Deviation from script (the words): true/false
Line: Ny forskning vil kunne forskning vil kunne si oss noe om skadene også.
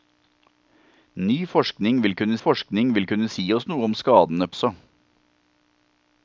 false